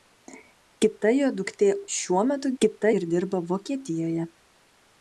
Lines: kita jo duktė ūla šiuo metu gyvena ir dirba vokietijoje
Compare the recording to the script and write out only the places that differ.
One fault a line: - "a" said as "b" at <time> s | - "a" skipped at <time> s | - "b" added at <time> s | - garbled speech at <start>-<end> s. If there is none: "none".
- "ūla" skipped at 1.7 s
- "gyvena" said as "kita" at 2.6 s